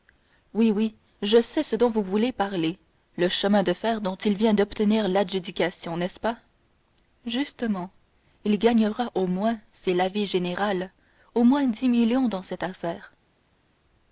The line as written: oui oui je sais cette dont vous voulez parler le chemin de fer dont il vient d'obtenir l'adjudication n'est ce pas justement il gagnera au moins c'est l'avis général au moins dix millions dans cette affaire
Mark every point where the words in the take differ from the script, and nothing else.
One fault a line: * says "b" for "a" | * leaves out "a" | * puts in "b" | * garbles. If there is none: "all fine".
* says "ce" for "cette"